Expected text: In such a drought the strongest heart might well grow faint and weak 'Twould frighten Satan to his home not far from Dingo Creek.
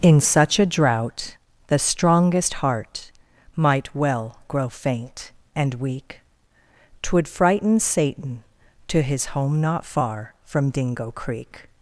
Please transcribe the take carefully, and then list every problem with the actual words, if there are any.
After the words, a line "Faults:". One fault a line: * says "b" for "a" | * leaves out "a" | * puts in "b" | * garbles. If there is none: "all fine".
In such a drought the strongest heart might well grow faint and weak 'Twould frighten Satan to his home not far from Dingo Creek.
Faults:
all fine